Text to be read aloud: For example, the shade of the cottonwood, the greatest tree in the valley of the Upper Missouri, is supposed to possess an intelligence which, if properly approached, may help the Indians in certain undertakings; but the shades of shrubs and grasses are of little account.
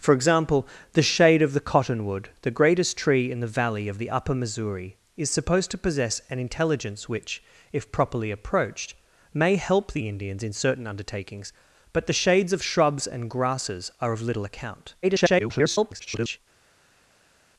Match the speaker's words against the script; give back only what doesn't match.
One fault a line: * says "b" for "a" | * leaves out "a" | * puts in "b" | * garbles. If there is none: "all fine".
* garbles